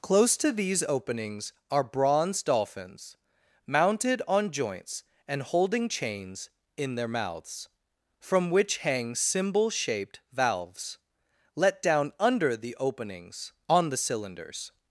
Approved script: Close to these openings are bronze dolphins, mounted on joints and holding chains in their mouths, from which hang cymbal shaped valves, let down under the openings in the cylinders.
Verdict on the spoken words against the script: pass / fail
fail